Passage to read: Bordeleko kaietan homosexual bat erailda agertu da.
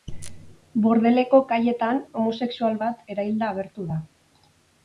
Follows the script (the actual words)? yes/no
yes